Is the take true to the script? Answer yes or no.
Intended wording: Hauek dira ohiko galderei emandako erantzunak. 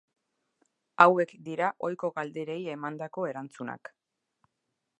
yes